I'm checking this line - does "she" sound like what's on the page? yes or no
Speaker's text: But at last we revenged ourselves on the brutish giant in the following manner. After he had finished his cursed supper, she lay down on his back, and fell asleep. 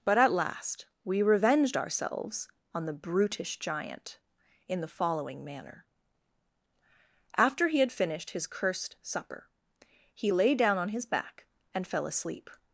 no